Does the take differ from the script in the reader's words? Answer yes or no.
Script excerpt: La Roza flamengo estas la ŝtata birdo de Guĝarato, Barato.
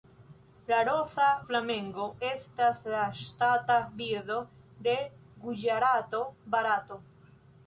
no